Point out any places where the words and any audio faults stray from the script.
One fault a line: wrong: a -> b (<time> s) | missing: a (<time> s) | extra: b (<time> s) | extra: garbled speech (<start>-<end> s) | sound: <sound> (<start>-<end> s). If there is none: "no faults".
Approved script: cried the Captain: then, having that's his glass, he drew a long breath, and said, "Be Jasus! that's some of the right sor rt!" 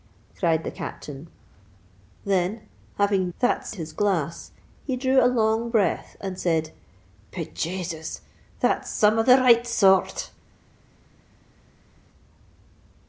no faults